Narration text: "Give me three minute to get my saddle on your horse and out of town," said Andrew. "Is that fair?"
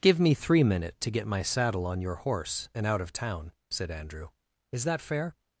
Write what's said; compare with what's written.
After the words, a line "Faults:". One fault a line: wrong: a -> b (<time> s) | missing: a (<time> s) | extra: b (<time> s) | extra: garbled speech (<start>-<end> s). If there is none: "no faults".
"Give me three minute to get my saddle on your horse and out of town," said Andrew. "Is that fair?"
Faults:
no faults